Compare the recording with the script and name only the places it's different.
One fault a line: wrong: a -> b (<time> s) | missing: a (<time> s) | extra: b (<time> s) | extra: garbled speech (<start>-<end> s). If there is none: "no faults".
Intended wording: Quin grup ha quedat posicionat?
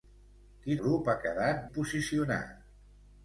no faults